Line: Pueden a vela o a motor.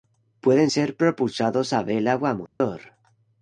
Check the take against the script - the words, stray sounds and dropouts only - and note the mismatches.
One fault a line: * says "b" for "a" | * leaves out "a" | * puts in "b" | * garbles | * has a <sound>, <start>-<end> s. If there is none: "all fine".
* puts in "ser propulsados"
* has a dropout, 2.5-2.6 s